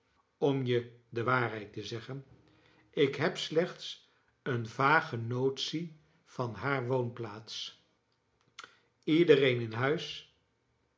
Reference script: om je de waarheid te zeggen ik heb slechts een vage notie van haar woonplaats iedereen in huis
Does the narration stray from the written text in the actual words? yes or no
no